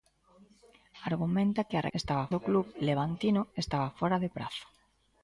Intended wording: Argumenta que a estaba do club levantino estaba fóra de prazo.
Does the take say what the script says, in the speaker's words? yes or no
yes